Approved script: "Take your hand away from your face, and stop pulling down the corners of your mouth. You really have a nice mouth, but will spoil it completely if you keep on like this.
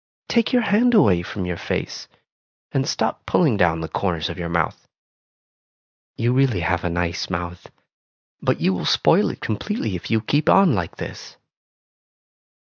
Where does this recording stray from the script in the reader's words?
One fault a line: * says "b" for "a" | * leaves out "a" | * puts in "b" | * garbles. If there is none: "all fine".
* puts in "you"